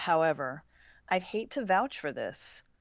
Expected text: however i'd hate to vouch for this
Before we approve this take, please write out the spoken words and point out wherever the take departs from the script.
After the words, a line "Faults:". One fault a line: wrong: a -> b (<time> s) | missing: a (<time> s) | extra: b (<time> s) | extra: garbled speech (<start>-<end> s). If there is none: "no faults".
however i'd hate to vouch for this
Faults:
no faults